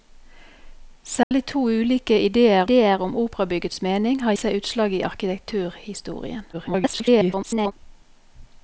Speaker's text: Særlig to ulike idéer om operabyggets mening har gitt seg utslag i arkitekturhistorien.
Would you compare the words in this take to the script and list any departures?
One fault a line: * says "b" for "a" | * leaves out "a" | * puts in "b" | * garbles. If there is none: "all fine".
* puts in "idéer"
* leaves out "gitt"
* garbles